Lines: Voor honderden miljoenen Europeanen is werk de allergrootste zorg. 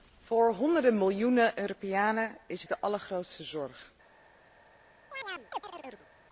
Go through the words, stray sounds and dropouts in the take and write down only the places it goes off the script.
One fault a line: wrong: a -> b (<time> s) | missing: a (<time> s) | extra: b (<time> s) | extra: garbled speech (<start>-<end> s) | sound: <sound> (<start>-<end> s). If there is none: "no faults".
missing: werk (2.6 s)
sound: chirp (5.1-6.1 s)